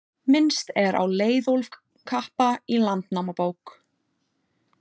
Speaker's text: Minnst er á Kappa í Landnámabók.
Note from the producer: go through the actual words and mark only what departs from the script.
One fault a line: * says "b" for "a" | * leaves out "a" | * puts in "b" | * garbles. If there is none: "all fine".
* puts in "Leiðólf"